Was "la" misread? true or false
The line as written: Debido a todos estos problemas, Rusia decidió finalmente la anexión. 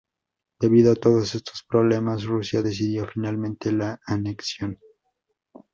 false